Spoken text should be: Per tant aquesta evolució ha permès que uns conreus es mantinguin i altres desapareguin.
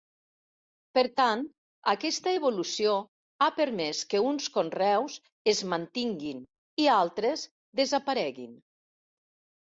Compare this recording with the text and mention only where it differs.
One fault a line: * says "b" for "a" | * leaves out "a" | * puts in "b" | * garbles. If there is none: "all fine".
all fine